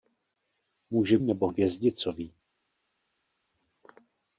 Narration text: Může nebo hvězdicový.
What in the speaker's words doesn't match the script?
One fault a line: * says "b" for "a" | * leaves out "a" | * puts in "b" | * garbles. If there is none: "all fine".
all fine